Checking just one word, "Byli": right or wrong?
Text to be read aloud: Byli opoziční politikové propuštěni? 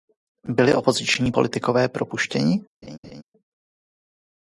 right